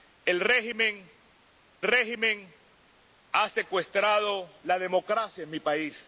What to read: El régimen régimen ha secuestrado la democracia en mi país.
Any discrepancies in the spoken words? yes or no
no